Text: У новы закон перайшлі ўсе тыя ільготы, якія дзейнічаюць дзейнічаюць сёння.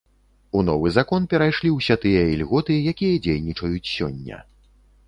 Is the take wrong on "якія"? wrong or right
right